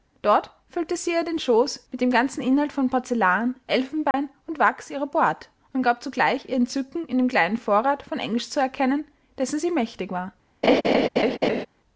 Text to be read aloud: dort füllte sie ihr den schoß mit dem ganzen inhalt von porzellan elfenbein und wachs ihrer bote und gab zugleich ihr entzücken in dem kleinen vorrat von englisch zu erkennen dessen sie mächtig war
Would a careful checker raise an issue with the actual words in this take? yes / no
no